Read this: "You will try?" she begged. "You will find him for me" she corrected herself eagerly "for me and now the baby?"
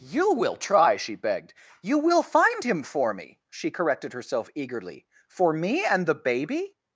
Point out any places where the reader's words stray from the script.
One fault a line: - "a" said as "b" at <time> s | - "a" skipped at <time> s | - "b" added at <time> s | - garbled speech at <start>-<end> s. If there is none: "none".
- "now" skipped at 6.1 s